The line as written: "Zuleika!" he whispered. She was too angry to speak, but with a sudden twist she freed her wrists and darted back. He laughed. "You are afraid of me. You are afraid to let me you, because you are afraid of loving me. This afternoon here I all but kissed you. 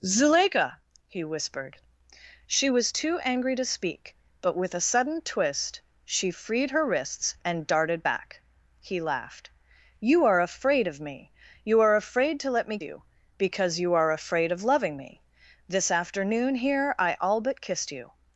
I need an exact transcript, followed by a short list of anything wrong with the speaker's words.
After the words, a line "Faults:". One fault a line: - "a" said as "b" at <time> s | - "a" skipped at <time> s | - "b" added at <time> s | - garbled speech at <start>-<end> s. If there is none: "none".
"Zuleika!" he whispered. She was too angry to speak, but with a sudden twist she freed her wrists and darted back. He laughed. "You are afraid of me. You are afraid to let me you, because you are afraid of loving me. This afternoon here I all but kissed you.
Faults:
none